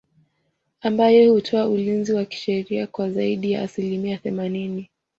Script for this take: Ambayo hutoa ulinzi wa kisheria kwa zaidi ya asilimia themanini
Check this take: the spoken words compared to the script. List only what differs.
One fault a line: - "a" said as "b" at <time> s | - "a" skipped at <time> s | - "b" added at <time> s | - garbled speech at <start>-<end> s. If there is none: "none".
none